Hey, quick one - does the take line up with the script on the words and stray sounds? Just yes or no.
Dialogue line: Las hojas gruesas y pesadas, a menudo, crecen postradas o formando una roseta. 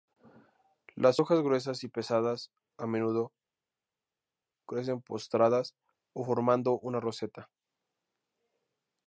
yes